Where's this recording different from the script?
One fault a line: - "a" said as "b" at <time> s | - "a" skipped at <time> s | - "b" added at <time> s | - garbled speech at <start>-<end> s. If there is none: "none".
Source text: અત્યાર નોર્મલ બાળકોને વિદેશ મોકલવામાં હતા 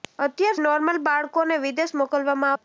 none